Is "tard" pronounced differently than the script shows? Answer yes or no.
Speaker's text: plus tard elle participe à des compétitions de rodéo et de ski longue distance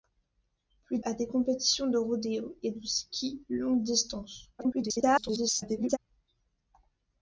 yes